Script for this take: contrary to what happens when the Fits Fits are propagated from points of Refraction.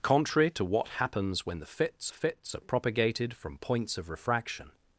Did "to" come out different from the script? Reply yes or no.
no